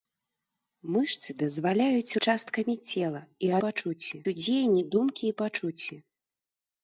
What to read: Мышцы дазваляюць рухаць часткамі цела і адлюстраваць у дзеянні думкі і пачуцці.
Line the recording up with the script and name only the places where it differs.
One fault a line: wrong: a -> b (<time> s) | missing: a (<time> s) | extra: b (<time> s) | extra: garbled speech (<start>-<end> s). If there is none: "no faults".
missing: рухаць (2.2 s)
wrong: адлюстраваць -> пачуцці (3.7 s)